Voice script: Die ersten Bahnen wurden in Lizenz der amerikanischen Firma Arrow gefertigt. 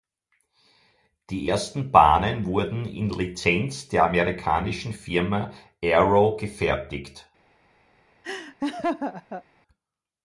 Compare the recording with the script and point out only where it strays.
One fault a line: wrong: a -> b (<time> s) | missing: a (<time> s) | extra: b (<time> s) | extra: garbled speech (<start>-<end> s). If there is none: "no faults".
no faults